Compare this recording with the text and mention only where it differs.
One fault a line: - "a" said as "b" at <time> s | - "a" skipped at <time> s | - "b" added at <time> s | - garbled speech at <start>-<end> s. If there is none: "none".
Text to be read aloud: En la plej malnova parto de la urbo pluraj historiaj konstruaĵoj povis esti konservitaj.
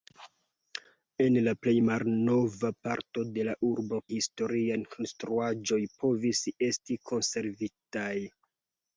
- "pluraj" skipped at 4.0 s